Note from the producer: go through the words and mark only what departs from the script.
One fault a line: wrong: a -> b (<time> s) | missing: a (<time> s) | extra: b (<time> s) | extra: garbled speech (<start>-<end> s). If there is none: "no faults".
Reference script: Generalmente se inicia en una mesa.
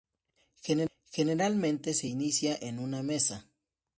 no faults